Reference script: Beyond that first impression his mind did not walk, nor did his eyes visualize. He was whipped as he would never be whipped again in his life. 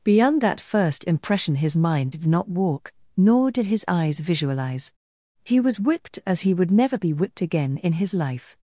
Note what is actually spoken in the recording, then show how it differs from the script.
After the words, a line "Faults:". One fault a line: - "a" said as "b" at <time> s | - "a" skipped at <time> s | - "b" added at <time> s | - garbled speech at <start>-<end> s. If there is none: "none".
Beyond that first impression his mind did not walk, nor did his eyes visualize. He was whipped as he would never be whipped again in his life.
Faults:
none